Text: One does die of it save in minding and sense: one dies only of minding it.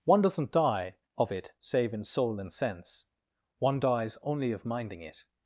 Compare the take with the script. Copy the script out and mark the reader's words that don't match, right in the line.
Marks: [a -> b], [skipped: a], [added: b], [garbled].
One [does -> doesn't] die of it save in [minding -> soul] and sense: one dies only of minding it.